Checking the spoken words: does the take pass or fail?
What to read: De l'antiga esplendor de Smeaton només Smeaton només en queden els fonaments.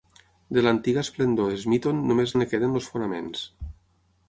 fail